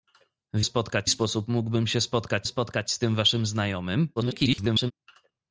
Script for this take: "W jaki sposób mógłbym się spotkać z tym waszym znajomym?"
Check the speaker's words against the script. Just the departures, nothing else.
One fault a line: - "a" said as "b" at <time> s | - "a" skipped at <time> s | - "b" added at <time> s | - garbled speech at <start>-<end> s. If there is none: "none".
- "jaki" said as "spotkać" at 0.6 s
- "spotkać" added at 2.4 s
- garbled speech at 4.2-4.9 s